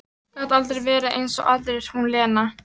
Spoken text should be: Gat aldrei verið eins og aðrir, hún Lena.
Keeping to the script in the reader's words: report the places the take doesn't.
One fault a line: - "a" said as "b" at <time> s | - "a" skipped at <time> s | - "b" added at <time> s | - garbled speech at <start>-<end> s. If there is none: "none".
none